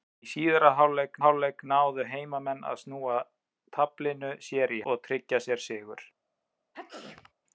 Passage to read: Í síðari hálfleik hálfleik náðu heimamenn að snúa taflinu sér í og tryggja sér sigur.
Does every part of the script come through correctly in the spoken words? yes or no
yes